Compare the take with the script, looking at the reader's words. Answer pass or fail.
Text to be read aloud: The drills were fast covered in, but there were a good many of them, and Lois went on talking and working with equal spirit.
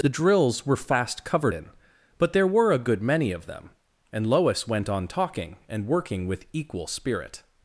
pass